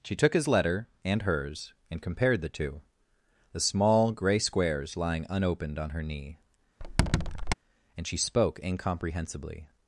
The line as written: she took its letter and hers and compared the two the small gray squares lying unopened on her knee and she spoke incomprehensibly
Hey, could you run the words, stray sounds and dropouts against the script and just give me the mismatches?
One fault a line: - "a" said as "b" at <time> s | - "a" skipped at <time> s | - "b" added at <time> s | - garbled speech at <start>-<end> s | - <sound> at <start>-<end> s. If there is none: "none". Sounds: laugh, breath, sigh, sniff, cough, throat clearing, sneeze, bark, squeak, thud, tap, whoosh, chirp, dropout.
- "its" said as "his" at 0.3 s
- squeak at 6.8-7.5 s